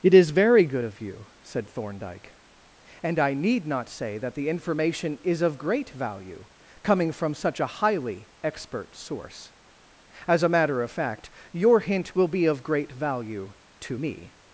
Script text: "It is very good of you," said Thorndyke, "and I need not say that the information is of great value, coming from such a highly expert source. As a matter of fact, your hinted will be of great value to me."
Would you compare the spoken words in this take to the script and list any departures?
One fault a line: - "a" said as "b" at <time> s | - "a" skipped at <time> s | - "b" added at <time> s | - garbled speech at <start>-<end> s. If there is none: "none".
- "hinted" said as "hint" at 11.8 s